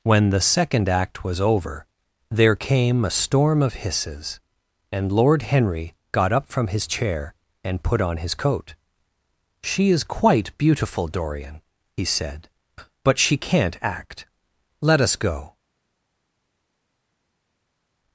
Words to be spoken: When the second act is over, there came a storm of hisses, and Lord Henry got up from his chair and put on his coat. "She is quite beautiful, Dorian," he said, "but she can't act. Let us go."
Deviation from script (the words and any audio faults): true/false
true